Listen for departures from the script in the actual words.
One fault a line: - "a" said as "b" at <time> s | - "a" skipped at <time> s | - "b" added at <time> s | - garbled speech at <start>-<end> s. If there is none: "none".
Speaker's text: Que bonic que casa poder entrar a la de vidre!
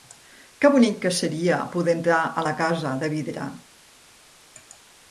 - "casa" said as "seria" at 1.2 s
- "casa" added at 2.6 s